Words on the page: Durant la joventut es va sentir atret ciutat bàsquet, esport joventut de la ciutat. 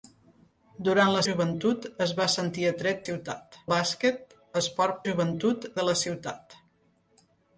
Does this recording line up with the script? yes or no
yes